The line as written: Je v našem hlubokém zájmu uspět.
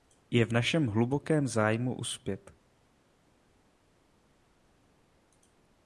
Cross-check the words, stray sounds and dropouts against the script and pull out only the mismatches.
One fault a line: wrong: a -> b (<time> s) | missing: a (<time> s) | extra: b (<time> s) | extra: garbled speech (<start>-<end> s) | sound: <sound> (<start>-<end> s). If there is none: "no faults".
no faults